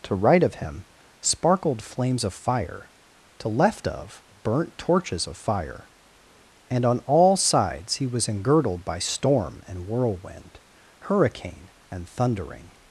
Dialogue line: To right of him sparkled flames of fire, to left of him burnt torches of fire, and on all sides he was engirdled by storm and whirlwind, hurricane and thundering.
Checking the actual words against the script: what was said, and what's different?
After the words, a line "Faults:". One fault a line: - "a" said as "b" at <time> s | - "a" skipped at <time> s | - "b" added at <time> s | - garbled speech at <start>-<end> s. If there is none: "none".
To right of him sparkled flames of fire, to left of burnt torches of fire, and on all sides he was engirdled by storm and whirlwind, hurricane and thundering.
Faults:
- "him" skipped at 4.2 s